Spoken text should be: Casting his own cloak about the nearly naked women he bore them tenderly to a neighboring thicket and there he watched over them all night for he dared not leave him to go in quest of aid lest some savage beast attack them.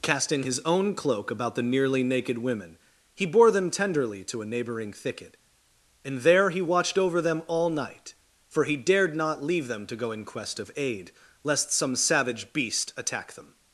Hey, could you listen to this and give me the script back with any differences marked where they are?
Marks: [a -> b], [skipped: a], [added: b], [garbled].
Casting his own cloak about the nearly naked women he bore them tenderly to a neighboring thicket and there he watched over them all night for he dared not leave [him -> them] to go in quest of aid lest some savage beast attack them.